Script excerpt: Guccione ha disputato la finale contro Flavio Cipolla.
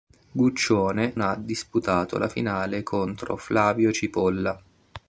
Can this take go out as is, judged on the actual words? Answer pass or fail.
pass